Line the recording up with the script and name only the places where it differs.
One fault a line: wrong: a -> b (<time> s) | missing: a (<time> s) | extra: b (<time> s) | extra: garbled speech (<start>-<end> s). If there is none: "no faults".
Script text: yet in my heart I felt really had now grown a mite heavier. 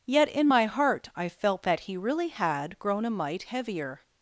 extra: that he (1.6 s)
missing: now (2.8 s)